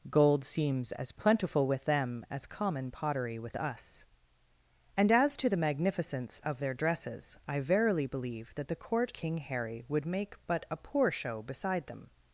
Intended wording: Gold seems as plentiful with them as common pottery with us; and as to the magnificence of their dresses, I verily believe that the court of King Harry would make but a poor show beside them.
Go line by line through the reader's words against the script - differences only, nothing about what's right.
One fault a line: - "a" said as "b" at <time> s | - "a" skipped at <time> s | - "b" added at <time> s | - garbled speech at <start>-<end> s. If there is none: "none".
- "of" skipped at 9.1 s